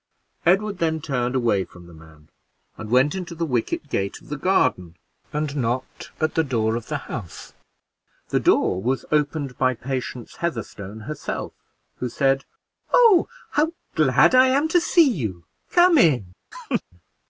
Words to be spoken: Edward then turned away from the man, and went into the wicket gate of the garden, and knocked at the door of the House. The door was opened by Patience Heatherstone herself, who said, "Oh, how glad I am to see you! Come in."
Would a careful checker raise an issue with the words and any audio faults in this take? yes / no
yes